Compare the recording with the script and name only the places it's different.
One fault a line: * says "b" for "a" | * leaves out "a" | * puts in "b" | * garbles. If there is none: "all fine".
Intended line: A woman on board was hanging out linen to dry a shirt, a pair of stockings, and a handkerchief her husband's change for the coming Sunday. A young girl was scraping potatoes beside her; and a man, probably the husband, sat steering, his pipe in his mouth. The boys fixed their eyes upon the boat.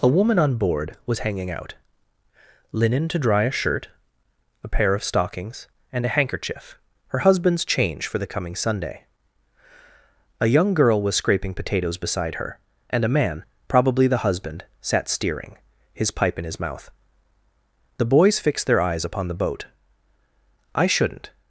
* puts in "I shouldn't"